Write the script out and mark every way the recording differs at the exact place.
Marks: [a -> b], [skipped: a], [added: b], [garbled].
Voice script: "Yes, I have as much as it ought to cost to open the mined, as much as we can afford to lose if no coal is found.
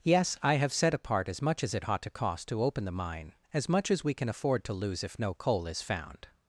"Yes, I have [added: set apart] as much as it ought to cost to open the [mined, -> mine] as much as we can afford to lose if no coal is found.